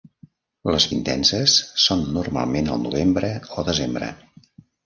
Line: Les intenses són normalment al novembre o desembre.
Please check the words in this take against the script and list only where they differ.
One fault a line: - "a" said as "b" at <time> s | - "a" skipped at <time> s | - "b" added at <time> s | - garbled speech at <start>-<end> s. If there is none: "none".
none